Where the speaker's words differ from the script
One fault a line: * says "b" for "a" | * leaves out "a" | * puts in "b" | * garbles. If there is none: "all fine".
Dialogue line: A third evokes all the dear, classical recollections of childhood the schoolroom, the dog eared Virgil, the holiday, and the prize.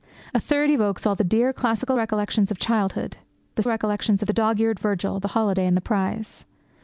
* says "recollections" for "schoolroom"